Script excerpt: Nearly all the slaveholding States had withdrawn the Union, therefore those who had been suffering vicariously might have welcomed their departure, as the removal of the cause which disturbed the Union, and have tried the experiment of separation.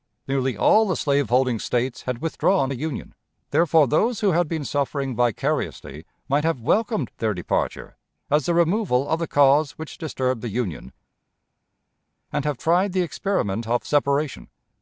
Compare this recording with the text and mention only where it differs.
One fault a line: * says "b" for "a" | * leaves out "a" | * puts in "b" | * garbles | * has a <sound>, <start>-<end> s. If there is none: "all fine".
all fine